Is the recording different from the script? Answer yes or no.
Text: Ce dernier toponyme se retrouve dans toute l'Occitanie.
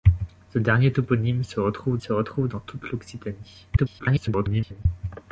yes